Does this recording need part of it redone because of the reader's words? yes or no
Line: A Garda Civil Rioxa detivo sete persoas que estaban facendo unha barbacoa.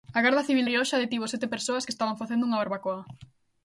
no